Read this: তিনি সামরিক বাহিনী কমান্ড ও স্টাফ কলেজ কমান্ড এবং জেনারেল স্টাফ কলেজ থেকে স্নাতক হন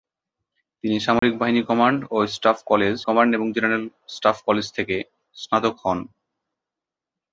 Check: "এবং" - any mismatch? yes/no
no